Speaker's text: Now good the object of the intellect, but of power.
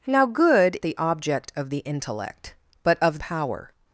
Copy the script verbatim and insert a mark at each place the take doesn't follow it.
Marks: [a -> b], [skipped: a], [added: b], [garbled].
Now good the object of the intellect, but of power.